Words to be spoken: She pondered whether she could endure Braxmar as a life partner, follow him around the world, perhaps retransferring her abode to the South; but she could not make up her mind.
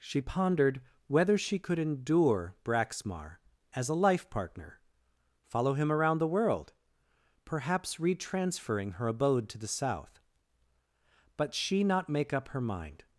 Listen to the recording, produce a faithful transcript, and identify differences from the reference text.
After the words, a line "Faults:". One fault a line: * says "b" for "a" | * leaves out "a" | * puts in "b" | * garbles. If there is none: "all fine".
She pondered whether she could endure Braxmar as a life partner, follow him around the world, perhaps retransferring her abode to the South; but she not make up her mind.
Faults:
* leaves out "could"